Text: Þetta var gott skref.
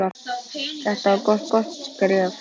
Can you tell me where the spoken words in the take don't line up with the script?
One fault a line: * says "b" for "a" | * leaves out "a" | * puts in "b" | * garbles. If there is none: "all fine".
* puts in "gott"